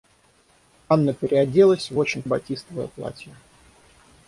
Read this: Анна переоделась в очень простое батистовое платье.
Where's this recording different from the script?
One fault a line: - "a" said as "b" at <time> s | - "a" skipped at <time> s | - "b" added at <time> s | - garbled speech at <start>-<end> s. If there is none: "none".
- "простое" skipped at 2.2 s